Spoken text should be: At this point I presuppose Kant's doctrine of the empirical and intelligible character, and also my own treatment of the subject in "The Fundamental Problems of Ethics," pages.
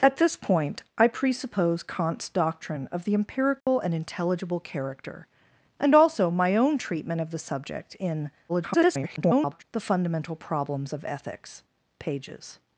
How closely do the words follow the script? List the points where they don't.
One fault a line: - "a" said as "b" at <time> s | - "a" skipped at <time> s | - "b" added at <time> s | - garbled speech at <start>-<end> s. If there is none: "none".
- garbled speech at 8.5-9.6 s